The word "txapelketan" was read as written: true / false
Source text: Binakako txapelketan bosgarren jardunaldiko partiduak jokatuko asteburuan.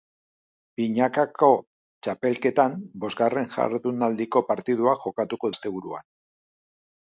true